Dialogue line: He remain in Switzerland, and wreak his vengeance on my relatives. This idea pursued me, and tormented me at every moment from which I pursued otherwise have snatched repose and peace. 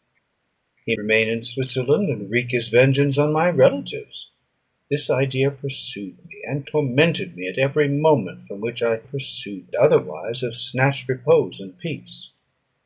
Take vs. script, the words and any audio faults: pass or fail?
pass